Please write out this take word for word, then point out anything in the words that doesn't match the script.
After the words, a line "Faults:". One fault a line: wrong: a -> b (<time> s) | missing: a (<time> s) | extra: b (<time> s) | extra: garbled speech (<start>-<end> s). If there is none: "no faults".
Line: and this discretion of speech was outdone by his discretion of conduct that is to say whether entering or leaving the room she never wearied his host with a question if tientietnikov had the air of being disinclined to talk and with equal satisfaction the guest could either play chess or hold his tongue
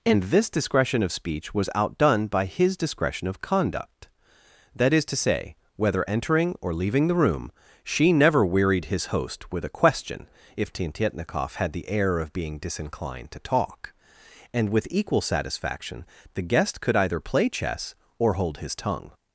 and this discretion of speech was outdone by his discretion of conduct that is to say whether entering or leaving the room she never wearied his host with a question if tientietnikov had the air of being disinclined to talk and with equal satisfaction the guest could either play chess or hold his tongue
Faults:
no faults